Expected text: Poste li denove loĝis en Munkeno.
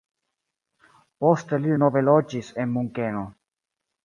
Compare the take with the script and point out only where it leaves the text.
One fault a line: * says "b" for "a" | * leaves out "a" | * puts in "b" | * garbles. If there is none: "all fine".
all fine